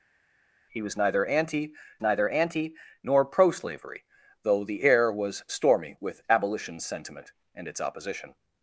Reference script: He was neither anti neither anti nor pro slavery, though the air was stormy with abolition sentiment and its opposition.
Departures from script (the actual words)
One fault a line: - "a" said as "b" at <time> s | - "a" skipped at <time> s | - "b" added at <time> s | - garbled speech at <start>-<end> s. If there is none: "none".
none